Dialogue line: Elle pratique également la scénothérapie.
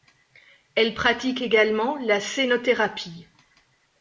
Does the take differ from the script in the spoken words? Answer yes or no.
no